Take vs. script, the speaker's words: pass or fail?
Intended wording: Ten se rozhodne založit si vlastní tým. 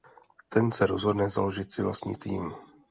pass